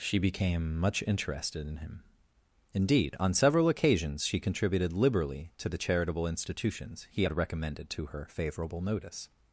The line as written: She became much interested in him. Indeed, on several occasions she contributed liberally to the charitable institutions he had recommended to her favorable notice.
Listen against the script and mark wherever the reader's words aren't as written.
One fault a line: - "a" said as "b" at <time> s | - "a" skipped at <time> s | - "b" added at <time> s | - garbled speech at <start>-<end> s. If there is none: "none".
none